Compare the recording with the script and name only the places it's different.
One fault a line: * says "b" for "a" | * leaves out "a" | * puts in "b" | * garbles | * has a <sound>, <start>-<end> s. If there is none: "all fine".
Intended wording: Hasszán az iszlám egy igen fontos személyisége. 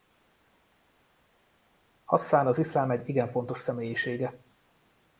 all fine